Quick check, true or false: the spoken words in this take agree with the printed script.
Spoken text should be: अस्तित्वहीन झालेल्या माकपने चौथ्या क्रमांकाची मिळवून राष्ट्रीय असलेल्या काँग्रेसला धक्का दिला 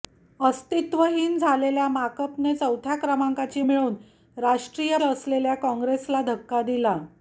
true